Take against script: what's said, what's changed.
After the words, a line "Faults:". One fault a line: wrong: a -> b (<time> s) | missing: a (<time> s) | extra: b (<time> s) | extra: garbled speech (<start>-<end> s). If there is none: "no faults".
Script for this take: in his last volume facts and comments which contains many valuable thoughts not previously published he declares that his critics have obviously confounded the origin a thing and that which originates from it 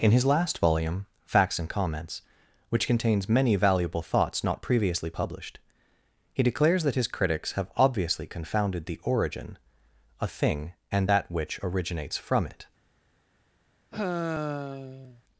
in his last volume facts and comments which contains many valuable thoughts not previously published he declares that his critics have obviously confounded the origin a thing and that which originates from it
Faults:
no faults